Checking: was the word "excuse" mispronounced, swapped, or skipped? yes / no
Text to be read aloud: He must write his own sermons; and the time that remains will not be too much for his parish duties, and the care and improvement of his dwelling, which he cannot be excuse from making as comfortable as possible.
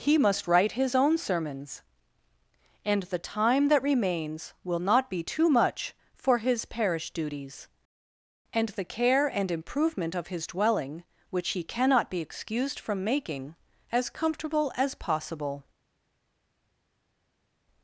yes